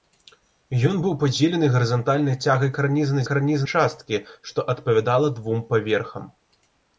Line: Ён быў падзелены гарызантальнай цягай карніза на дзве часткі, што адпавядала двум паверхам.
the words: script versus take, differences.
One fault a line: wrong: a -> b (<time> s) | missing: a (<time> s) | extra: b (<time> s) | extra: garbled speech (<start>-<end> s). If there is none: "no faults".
wrong: дзве -> карніза (3.3 s)